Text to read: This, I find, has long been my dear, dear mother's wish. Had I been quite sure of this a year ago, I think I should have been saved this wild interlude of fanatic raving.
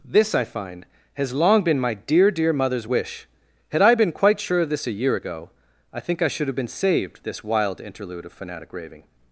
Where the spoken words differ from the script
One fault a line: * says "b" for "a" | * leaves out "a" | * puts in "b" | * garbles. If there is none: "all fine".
all fine